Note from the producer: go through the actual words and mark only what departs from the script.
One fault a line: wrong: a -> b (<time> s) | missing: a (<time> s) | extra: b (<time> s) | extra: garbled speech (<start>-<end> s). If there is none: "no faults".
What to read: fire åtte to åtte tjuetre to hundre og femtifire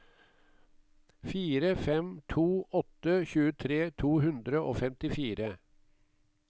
wrong: åtte -> fem (1.8 s)